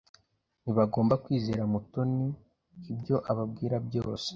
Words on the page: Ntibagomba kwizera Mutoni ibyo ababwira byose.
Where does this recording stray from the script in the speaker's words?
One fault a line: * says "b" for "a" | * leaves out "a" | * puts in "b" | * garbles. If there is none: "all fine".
all fine